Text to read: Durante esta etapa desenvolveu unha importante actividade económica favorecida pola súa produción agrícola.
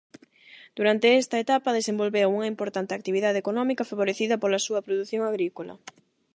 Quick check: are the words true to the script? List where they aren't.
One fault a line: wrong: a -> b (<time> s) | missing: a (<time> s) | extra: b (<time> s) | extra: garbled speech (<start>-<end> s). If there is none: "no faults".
no faults